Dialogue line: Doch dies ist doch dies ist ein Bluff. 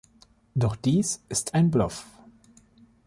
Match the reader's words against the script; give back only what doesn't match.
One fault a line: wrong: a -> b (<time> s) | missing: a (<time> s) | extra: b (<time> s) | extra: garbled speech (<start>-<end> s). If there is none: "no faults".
missing: doch dies ist (1.6 s)